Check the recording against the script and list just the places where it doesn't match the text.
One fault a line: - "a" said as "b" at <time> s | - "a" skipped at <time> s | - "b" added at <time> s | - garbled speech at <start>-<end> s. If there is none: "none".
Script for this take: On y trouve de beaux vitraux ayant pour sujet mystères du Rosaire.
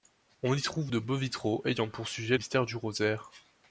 none